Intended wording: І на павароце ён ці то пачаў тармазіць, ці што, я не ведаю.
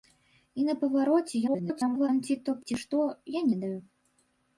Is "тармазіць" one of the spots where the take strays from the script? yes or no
yes